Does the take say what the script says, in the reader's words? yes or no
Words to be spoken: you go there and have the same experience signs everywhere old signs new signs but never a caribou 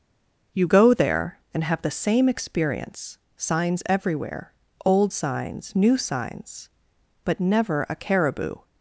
yes